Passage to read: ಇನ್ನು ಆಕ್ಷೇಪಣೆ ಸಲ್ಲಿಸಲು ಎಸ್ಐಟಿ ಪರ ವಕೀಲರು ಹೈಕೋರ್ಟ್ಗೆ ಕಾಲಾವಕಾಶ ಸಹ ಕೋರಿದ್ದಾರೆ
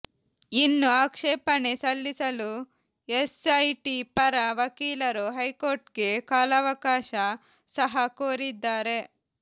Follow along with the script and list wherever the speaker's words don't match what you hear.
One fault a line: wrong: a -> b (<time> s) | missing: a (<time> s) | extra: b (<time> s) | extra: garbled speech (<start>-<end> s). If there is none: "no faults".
no faults